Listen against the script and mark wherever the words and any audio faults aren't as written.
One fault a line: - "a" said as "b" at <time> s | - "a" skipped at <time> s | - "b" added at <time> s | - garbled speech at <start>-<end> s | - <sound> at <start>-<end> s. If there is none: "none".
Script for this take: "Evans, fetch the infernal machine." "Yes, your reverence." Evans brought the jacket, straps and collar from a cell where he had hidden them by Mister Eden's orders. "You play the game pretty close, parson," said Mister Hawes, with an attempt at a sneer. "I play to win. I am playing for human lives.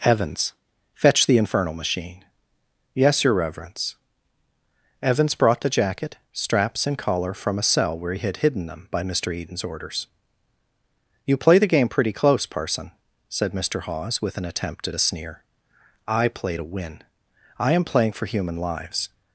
none